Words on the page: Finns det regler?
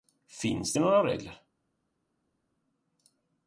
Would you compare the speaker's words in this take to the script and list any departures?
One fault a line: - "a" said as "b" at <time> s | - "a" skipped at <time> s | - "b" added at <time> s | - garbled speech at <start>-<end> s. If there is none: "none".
- "några" added at 0.8 s